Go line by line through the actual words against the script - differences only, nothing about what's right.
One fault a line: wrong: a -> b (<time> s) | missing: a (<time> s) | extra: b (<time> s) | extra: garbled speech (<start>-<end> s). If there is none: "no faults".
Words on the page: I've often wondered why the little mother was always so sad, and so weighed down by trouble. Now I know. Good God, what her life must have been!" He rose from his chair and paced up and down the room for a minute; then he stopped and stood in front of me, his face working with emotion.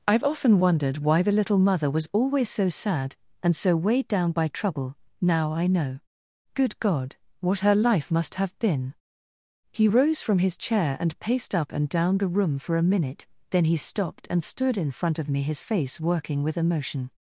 no faults